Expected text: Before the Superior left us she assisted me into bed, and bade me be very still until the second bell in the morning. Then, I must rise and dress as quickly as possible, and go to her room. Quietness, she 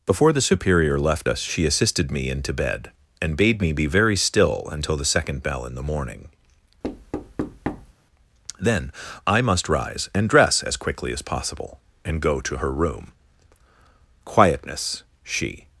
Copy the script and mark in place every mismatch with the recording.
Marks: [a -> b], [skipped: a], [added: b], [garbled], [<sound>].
Before the Superior left us she assisted me into bed, and bade me be very still until the second bell in the morning. [thud] Then, I must rise and dress as quickly as possible, and go to her room. Quietness, she